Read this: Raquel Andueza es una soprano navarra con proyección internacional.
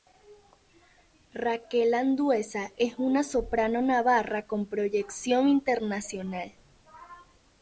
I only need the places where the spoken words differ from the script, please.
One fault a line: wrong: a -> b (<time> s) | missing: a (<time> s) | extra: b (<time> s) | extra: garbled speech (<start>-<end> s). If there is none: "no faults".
no faults